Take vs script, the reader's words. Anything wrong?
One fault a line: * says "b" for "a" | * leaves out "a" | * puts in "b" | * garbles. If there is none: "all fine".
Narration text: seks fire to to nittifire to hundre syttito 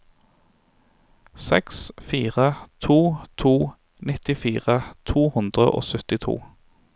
* puts in "og"